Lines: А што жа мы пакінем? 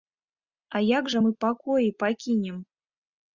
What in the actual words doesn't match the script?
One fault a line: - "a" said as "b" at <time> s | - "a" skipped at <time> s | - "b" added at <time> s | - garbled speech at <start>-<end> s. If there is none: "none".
- "што" said as "як" at 1.0 s
- "пакоі" added at 1.5 s